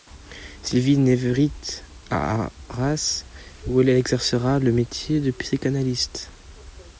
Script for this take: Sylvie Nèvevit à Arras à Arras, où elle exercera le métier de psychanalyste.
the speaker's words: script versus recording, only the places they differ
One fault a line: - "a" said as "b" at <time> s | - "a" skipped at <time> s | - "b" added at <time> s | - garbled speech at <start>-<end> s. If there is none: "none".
- "à Arras" skipped at 3.2 s